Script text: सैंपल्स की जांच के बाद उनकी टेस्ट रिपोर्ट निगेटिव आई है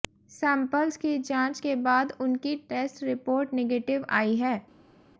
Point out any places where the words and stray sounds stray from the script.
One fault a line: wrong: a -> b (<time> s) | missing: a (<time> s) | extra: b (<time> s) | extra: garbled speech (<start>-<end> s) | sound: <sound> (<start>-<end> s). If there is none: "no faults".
no faults